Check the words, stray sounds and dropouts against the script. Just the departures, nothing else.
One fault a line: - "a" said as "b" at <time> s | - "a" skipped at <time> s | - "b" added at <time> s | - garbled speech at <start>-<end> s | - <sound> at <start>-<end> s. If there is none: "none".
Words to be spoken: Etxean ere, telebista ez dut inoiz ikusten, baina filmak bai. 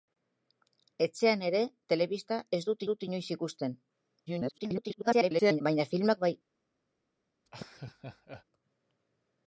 - "dut" added at 2.9 s
- garbled speech at 4.3-5.6 s
- laugh at 7.5-8.5 s